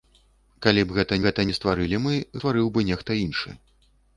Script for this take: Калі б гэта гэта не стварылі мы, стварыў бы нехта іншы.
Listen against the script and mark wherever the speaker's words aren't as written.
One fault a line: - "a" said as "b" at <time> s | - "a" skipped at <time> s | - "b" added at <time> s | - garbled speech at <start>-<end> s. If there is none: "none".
none